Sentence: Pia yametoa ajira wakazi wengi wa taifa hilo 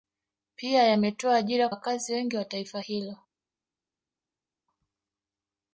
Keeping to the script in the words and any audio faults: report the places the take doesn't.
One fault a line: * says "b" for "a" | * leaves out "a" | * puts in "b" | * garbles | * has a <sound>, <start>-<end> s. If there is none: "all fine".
all fine